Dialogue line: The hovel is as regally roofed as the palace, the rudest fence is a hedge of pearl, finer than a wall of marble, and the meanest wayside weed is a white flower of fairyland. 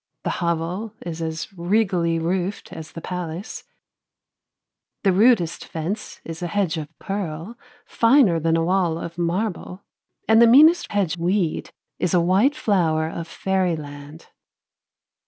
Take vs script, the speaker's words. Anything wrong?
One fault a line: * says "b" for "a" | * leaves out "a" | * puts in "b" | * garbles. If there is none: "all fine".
* says "hedge" for "wayside"